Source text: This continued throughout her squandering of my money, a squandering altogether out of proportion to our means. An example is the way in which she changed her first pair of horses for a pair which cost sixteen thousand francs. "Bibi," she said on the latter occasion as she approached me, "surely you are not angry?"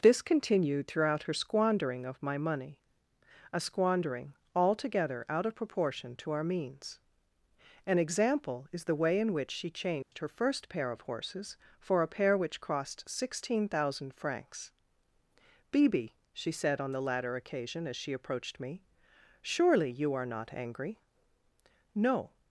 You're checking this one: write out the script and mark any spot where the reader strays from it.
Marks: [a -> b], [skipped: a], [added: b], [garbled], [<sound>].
This continued throughout her squandering of my money, a squandering altogether out of proportion to our means. An example is the way in which she changed [dropout] her first pair of horses for a pair which cost sixteen thousand francs. "Bibi," she said on the latter occasion as she approached me, "surely you are not angry?" [added: No]